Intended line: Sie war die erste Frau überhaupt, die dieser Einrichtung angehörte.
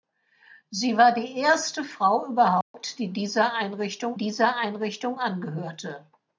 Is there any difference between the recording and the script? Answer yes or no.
yes